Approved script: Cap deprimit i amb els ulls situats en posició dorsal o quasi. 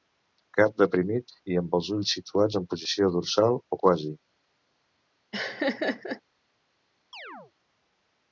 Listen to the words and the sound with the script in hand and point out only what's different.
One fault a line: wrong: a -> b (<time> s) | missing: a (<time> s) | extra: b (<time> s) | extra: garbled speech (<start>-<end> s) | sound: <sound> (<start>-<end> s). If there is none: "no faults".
sound: laugh (5.3-6.2 s)
sound: chirp (7.1-7.5 s)